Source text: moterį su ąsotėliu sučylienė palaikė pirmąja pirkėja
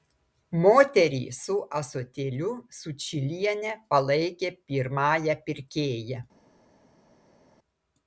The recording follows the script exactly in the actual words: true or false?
true